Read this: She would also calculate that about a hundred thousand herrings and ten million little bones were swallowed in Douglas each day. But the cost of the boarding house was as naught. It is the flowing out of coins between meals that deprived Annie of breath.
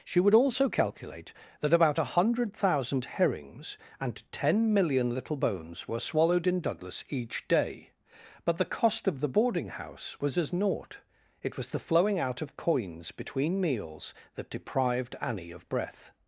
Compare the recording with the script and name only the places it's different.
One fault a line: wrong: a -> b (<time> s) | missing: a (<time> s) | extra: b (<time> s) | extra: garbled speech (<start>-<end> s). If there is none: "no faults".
wrong: is -> was (11.6 s)